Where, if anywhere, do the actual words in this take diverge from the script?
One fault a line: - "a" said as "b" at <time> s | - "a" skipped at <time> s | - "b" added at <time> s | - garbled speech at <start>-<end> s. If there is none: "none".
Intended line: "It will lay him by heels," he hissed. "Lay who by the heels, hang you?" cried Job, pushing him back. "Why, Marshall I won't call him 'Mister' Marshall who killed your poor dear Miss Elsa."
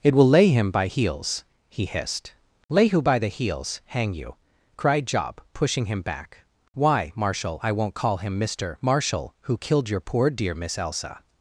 none